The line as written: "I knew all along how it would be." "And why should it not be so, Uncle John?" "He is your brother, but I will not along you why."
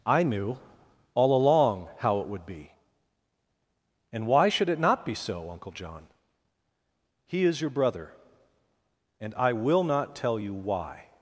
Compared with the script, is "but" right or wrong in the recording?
wrong